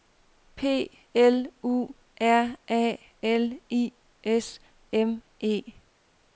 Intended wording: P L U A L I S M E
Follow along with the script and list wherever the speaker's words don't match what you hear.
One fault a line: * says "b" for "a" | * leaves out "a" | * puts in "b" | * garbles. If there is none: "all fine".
* puts in "R"